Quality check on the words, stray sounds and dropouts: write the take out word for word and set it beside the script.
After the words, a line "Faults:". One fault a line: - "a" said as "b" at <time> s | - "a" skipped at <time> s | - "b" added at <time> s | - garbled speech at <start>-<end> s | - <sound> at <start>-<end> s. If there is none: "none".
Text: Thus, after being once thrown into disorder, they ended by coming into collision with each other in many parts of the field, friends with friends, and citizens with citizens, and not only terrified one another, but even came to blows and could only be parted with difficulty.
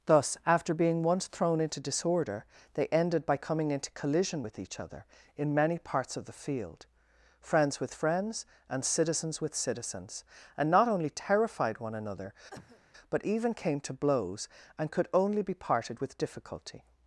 Thus, after being once thrown into disorder, they ended by coming into collision with each other in many parts of the field, friends with friends, and citizens with citizens, and not only terrified one another, but even came to blows and could only be parted with difficulty.
Faults:
- cough at 12.5-12.9 s